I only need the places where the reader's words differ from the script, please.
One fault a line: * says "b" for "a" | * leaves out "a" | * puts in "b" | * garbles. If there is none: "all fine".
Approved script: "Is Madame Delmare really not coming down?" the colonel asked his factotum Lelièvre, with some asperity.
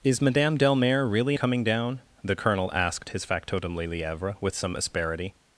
* leaves out "not"